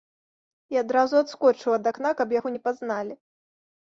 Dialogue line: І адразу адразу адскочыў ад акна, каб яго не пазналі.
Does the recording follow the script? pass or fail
fail